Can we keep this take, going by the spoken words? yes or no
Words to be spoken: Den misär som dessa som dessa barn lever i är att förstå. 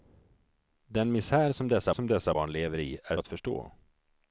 yes